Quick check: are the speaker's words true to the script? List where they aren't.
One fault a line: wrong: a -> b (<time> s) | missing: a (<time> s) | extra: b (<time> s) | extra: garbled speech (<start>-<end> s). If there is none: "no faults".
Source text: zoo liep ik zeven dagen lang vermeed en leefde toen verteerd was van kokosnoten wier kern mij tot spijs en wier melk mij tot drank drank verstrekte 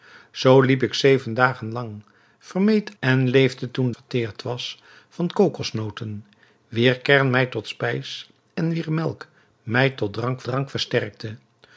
no faults